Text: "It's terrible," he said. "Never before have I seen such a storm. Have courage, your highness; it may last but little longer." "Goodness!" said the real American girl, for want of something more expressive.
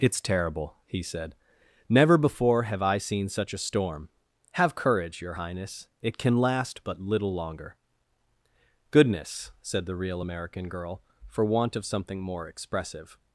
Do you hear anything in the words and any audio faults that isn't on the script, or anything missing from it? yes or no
yes